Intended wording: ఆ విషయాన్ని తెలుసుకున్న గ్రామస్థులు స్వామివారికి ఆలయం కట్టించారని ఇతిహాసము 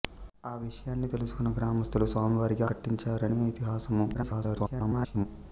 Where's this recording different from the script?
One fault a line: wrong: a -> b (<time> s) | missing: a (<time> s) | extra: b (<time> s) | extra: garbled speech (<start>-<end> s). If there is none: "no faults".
missing: ఆలయం (2.6 s)
extra: garbled speech (4.1-5.3 s)